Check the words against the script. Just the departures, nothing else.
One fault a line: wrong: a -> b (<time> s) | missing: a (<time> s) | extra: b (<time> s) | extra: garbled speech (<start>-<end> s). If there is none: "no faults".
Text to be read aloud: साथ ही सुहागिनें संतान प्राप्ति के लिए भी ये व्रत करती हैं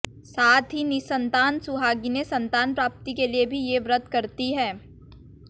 extra: निसंतान (0.8 s)